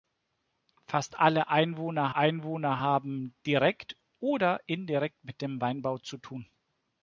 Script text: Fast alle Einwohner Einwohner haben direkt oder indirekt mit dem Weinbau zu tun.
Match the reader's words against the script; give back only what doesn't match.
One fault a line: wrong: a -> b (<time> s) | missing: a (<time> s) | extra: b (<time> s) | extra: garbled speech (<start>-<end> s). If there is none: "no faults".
no faults